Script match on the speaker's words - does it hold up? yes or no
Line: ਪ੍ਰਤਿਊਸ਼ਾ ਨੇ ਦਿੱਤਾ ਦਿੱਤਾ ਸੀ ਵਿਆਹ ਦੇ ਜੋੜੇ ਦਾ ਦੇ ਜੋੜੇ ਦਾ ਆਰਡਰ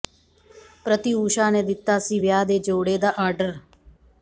no